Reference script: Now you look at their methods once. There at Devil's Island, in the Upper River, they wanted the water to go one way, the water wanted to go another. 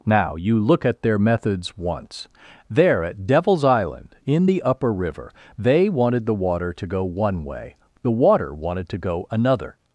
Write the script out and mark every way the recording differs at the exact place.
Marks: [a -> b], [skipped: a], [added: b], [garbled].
Now you look at their methods once. There at Devil's Island, in the Upper River, they wanted the water to go one way, the water wanted to go another.